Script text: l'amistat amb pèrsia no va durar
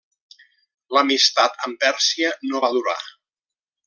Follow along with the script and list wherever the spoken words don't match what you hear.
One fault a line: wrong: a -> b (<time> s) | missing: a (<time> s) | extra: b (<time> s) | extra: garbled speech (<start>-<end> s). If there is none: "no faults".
no faults